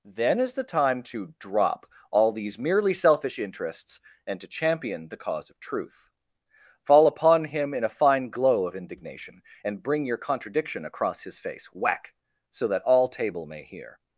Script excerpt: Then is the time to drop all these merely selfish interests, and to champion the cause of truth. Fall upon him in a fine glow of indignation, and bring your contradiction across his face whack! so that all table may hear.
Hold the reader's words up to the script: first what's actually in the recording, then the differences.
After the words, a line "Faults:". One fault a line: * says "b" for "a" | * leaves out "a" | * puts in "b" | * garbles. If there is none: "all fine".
Then is the time to drop all these merely selfish interests, and to champion the cause of truth. Fall upon him in a fine glow of indignation, and bring your contradiction across his face whack! so that all table may hear.
Faults:
all fine